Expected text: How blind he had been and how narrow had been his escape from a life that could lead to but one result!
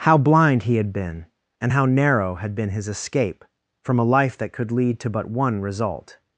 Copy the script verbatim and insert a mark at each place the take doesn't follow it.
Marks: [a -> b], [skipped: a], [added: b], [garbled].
How blind he had been and how narrow had been his escape from a life that could lead to but one result!